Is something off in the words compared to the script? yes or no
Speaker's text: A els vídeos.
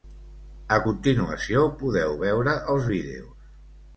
yes